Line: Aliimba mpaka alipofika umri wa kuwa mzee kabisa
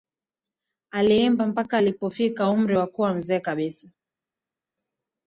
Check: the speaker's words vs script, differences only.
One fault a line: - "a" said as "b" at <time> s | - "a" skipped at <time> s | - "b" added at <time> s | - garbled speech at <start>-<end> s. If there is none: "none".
none